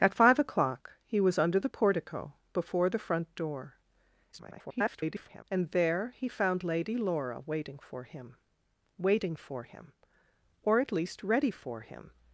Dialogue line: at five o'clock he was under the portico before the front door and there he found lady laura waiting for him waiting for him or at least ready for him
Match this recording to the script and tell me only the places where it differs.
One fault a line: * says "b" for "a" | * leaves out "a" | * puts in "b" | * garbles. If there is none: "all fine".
* garbles